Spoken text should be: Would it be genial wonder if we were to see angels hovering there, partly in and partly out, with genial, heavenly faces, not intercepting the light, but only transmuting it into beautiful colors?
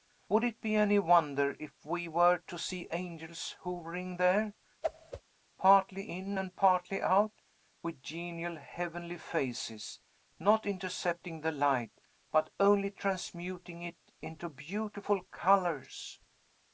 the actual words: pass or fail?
fail